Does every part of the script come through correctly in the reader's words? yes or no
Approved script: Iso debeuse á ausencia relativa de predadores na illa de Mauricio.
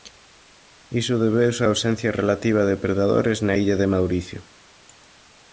yes